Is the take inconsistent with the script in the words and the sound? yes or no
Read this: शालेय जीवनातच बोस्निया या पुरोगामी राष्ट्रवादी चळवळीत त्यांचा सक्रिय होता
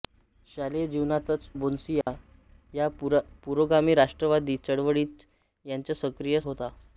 yes